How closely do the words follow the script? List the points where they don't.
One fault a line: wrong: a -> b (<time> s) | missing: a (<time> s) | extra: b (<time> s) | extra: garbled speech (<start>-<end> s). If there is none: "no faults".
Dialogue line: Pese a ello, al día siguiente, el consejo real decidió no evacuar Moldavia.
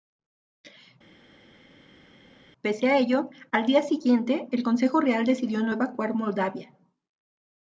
no faults